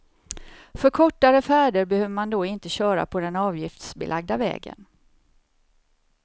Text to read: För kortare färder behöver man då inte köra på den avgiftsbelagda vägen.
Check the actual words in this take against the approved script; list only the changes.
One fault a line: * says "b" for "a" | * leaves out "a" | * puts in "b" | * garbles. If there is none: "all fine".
all fine